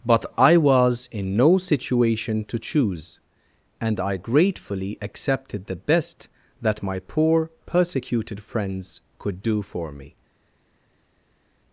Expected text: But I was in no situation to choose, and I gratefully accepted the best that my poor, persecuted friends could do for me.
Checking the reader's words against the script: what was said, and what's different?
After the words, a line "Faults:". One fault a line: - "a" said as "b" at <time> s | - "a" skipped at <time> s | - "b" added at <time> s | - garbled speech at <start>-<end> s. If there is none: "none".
But I was in no situation to choose, and I gratefully accepted the best that my poor, persecuted friends could do for me.
Faults:
none